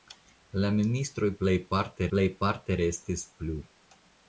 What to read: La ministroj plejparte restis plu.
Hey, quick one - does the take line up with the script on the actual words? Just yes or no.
no